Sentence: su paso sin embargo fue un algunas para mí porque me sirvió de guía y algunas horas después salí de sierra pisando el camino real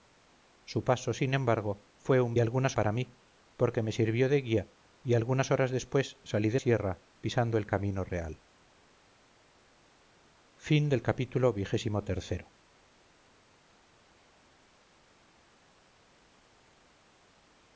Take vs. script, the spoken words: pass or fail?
pass